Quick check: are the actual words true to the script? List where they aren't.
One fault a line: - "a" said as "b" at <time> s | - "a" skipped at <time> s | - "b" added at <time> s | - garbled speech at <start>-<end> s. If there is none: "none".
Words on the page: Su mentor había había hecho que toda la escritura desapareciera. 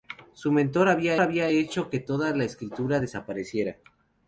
none